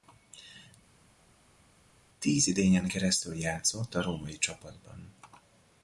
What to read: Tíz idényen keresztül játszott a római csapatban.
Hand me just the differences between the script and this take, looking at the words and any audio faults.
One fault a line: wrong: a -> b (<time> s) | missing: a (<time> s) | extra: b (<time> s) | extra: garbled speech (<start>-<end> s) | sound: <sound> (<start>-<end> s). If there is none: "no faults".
no faults